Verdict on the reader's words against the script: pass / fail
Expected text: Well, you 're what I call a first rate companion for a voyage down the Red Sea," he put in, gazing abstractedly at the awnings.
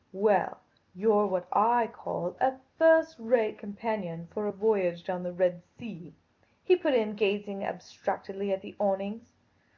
pass